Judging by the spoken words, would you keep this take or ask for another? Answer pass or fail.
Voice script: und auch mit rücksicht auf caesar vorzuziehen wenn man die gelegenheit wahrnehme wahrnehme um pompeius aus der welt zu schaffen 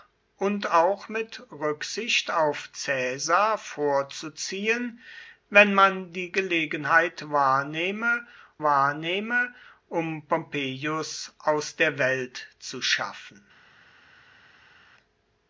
pass